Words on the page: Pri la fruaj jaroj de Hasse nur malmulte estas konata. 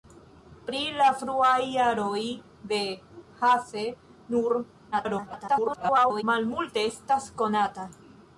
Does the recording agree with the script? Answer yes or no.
no